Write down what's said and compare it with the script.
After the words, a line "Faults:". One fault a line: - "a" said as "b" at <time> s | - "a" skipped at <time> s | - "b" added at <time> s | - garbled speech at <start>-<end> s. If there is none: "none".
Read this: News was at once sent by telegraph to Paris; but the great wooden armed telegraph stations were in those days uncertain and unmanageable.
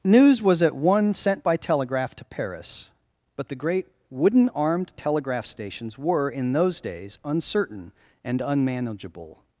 News was at one sent by telegraph to Paris; but the great wooden armed telegraph stations were in those days uncertain and unmanageable.
Faults:
- "once" said as "one" at 0.8 s